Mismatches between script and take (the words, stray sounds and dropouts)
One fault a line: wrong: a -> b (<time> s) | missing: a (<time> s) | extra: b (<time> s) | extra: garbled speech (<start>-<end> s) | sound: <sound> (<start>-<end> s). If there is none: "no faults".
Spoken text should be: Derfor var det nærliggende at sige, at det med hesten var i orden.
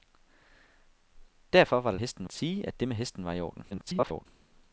wrong: nærliggende -> hesten (2.0 s)
extra: garbled speech (3.7-4.3 s)